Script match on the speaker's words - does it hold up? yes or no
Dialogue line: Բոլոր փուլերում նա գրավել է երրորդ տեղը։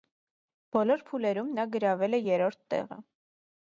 yes